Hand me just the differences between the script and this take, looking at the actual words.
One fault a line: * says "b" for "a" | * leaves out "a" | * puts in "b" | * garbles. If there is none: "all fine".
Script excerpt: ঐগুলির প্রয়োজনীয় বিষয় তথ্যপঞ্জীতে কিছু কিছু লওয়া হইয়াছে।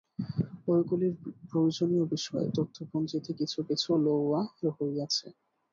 all fine